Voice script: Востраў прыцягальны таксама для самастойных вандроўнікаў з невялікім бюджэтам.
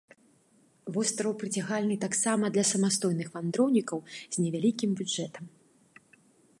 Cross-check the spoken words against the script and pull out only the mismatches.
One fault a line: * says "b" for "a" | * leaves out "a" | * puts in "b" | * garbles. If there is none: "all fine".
all fine